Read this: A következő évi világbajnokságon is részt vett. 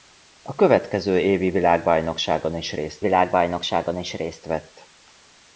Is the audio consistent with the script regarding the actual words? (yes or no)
no